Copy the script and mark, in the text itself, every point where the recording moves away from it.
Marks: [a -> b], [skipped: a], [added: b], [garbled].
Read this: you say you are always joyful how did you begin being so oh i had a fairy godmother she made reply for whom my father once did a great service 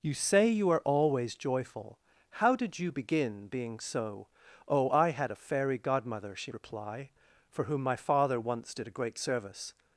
you say you are always joyful how did you begin being so oh i had a fairy godmother she [skipped: made] reply for whom my father once did a great service